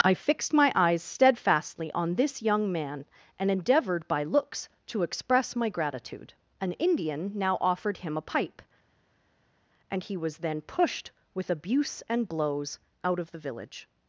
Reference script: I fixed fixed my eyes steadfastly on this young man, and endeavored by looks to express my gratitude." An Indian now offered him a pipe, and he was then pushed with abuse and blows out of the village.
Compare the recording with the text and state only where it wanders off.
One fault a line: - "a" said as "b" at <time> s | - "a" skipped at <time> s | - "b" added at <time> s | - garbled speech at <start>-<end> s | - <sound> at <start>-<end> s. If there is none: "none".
- "fixed" skipped at 0.5 s